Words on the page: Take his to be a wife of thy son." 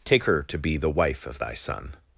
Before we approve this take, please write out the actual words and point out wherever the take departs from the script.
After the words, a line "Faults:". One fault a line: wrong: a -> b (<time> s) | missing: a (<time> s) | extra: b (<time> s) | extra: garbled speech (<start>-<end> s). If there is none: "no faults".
Take her to be the wife of thy son."
Faults:
wrong: his -> her (0.2 s)
wrong: a -> the (0.8 s)